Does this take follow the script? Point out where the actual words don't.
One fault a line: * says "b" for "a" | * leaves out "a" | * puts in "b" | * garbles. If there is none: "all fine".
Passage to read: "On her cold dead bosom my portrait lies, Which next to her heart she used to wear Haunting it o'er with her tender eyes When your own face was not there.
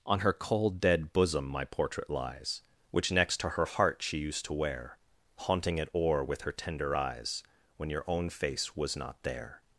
all fine